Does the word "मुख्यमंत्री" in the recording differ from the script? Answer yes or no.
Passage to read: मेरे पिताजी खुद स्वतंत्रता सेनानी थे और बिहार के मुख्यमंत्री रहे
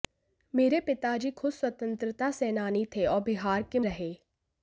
yes